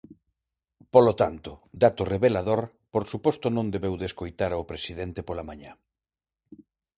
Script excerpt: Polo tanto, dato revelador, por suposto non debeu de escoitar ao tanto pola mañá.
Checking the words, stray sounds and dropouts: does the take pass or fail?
fail